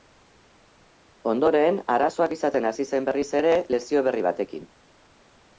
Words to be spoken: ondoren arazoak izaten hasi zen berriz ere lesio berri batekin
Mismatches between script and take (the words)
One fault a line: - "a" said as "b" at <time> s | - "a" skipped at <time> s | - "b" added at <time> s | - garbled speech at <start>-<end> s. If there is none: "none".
none